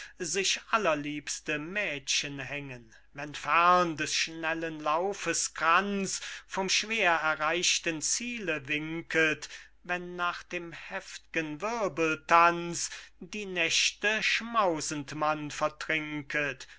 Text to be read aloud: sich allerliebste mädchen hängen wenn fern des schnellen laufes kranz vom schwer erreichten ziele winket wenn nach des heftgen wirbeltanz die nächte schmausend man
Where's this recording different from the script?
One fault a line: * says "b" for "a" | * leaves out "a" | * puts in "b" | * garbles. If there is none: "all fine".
* says "dem" for "des"